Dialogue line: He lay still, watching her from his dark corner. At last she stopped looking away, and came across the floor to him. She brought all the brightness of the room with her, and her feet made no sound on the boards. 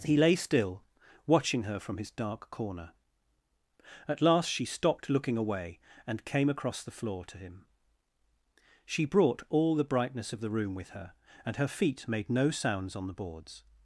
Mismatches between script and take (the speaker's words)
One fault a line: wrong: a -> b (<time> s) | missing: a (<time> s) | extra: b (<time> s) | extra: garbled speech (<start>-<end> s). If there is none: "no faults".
wrong: sound -> sounds (12.5 s)